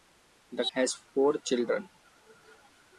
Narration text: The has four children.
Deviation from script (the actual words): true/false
false